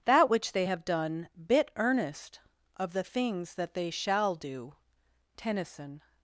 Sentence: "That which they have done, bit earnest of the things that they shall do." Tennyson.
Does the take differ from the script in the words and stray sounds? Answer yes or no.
no